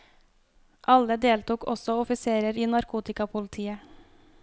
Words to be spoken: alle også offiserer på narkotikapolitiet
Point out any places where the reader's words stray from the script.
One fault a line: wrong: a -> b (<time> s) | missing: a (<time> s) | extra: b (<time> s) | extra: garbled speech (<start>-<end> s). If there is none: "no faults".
extra: deltok (1.2 s)
wrong: på -> i (2.5 s)